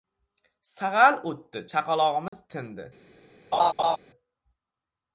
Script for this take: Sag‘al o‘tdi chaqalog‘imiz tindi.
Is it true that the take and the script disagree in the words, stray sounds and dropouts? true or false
true